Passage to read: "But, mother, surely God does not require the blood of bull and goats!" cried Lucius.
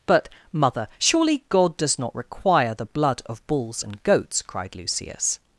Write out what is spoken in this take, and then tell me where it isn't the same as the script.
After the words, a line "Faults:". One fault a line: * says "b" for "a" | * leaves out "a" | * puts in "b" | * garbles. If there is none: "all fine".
"But, mother, surely God does not require the blood of bulls and goats!" cried Lucius.
Faults:
* says "bulls" for "bull"